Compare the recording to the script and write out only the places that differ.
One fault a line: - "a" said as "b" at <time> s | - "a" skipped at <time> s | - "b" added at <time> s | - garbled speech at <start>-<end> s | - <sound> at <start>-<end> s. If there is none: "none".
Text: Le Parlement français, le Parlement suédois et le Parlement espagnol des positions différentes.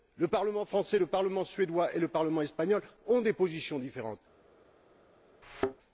- "ont" added at 3.1 s
- thud at 5.4-5.8 s